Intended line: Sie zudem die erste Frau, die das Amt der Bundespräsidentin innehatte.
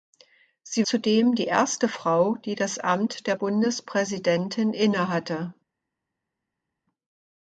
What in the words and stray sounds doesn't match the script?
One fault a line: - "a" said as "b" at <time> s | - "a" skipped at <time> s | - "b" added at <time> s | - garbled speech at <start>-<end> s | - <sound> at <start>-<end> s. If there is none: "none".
none